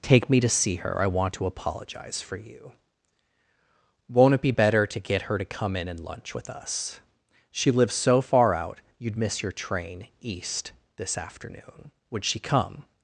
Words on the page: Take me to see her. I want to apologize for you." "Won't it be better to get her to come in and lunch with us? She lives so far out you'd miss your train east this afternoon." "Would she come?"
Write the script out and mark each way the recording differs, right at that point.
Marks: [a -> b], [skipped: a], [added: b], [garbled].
Take me to see her. I want to apologize for you." "Won't it be better to get her to come in and lunch with us? She lives so far out you'd miss your train east this afternoon." "Would she come?"